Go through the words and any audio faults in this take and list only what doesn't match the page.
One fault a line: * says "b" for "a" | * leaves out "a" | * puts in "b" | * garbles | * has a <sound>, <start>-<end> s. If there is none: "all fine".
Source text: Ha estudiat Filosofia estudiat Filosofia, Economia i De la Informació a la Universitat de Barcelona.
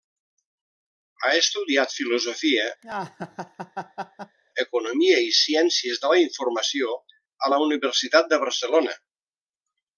* leaves out "estudiat Filosofia"
* has a laugh, 2.8-4.4 s
* puts in "Ciències"